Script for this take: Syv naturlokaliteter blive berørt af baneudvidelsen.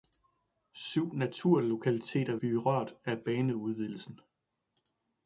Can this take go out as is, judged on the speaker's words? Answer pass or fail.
pass